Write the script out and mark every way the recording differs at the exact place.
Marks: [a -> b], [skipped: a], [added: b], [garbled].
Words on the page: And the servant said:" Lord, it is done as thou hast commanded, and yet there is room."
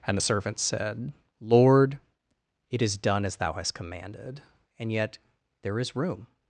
And the servant said:" Lord, it is done as thou hast commanded, and yet there is room."